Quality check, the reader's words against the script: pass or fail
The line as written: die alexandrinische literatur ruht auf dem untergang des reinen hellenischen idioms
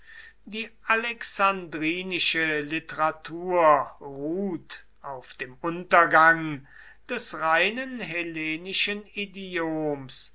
pass